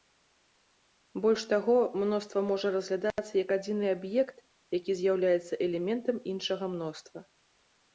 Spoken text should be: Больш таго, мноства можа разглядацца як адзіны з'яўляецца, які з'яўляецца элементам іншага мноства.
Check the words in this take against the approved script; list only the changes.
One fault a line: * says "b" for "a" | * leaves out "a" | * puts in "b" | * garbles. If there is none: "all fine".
* says "аб'ект" for "з'яўляецца"